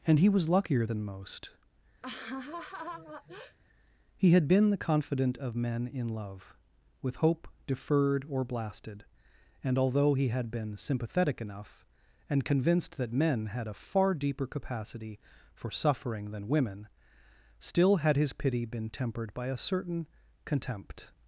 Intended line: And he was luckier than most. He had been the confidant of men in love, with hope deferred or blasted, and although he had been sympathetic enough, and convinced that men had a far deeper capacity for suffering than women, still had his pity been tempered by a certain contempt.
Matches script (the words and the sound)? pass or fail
fail